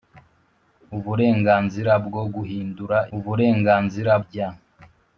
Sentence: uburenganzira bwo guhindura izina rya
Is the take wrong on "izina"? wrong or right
wrong